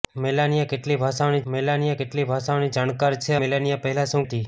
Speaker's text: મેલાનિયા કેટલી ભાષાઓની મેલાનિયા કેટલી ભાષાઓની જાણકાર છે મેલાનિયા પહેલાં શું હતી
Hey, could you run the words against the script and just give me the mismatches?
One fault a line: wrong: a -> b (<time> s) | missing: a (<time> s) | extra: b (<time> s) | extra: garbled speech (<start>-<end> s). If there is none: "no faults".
no faults